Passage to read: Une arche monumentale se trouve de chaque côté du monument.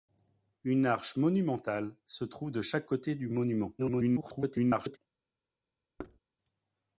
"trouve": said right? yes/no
yes